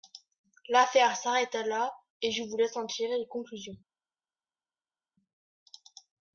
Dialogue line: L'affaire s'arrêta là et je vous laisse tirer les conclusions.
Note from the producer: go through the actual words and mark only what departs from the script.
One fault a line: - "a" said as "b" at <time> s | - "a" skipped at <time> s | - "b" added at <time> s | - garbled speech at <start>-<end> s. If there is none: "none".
- "en" added at 2.8 s